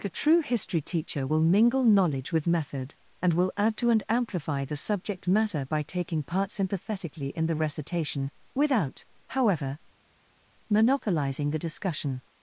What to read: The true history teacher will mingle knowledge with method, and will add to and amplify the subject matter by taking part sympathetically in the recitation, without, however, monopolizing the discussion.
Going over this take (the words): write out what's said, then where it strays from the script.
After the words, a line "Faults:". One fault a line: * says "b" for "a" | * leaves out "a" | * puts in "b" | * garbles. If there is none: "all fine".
The true history teacher will mingle knowledge with method, and will add to and amplify the subject matter by taking part sympathetically in the recitation, without, however, monopolizing the discussion.
Faults:
all fine